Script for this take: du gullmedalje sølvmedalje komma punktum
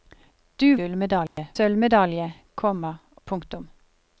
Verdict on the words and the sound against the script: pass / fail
fail